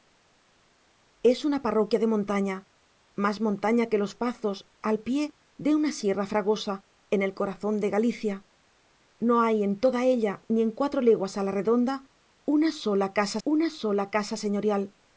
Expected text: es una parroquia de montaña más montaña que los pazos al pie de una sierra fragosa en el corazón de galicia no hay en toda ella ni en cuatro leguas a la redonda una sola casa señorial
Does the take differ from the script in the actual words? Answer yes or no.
yes